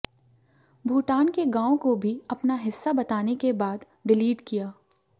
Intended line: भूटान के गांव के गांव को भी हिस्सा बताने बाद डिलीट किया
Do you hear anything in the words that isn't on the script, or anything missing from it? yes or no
yes